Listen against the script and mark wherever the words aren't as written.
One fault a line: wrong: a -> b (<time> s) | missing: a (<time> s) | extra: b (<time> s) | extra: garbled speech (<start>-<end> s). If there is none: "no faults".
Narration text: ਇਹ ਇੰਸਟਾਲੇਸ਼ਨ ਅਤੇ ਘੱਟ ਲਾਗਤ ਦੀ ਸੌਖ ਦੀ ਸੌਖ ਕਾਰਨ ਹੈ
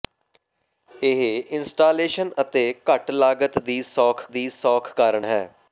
no faults